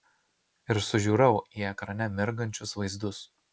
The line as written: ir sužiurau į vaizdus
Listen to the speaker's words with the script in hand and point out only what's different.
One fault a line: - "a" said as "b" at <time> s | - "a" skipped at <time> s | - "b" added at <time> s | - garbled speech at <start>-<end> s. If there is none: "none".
- "ekrane mirgančius" added at 1.7 s